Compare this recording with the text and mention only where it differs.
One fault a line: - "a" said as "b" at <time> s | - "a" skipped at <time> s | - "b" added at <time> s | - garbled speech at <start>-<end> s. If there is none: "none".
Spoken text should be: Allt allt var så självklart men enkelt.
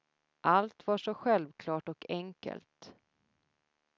- "allt" skipped at 0.9 s
- "men" said as "och" at 1.9 s